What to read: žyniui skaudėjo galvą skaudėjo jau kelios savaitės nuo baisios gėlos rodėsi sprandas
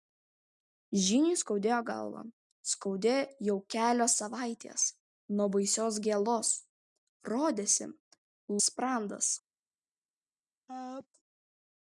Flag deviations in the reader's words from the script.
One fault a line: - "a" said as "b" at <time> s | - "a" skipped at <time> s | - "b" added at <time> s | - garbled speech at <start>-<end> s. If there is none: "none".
none